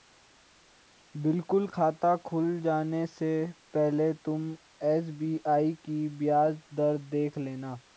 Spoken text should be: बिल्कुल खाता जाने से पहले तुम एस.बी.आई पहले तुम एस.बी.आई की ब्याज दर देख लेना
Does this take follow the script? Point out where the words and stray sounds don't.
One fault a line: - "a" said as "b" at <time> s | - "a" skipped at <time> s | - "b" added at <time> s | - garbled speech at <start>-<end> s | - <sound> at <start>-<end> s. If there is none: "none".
- "खुल" added at 2.3 s
- "पहले तुम एस.बी.आई" skipped at 5.7 s